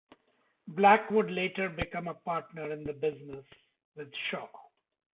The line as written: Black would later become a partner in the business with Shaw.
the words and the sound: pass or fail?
pass